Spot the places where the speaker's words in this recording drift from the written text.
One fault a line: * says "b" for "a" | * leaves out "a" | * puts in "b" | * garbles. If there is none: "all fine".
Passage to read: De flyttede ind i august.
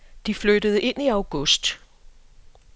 all fine